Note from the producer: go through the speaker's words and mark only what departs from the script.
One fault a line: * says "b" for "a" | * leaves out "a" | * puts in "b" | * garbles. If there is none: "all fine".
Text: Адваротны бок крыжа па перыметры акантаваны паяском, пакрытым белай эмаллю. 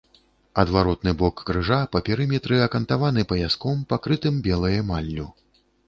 all fine